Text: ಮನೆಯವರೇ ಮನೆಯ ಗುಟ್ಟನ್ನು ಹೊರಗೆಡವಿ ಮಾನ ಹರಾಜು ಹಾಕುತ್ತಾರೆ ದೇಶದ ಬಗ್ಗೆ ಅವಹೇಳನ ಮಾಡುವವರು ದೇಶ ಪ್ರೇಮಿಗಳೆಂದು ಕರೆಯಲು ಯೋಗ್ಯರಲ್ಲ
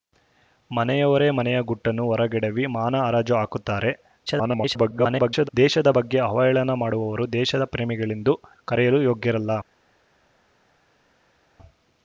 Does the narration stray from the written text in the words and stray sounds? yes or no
yes